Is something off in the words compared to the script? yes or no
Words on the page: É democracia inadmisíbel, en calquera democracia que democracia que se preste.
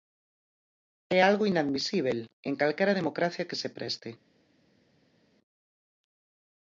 yes